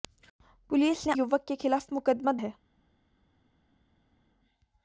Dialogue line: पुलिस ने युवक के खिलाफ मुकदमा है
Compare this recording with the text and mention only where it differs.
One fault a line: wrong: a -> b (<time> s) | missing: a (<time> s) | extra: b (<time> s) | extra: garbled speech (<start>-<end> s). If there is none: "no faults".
no faults